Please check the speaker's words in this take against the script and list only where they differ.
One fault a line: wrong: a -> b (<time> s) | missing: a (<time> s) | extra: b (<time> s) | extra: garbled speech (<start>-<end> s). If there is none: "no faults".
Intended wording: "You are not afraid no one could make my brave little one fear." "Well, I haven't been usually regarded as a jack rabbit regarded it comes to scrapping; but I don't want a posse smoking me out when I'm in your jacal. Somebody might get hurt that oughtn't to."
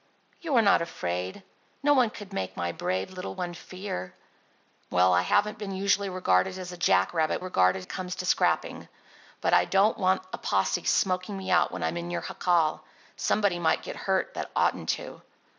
no faults